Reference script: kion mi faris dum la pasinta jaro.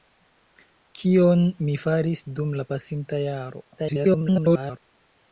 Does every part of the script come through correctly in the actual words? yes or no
no